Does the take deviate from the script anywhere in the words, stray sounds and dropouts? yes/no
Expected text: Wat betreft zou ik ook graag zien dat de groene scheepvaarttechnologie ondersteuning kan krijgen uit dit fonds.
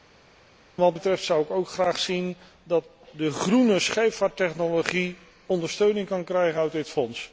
no